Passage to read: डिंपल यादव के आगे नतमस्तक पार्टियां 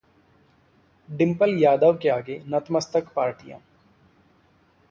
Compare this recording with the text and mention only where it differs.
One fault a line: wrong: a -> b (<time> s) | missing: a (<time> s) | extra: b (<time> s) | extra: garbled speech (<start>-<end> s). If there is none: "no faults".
no faults